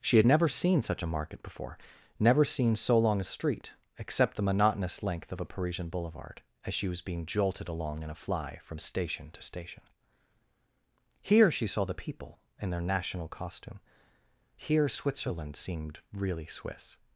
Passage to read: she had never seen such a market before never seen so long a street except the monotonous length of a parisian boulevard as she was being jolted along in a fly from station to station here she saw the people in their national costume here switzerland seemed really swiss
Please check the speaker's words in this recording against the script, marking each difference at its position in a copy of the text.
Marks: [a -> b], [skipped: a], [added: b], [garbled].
she had never seen such a market before never seen so long a street except the monotonous length of a parisian boulevard as she was being jolted along in a fly from station to station here she saw the people in their national costume here switzerland seemed really swiss